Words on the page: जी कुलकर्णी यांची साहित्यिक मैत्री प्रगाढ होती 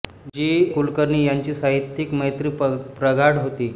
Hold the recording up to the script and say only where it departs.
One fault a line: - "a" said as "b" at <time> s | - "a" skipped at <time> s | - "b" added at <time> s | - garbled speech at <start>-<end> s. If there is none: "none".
none